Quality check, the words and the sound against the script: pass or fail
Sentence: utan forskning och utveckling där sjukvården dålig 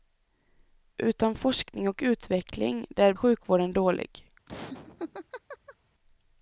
fail